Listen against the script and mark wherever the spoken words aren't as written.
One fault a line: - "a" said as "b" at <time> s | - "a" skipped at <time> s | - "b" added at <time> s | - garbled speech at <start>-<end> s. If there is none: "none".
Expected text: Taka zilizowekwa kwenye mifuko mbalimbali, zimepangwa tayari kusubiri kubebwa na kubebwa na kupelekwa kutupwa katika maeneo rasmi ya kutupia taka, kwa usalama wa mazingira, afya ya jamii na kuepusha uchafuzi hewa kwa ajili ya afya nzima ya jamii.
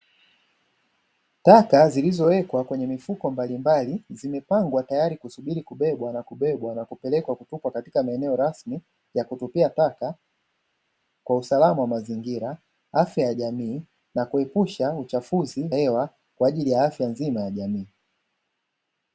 none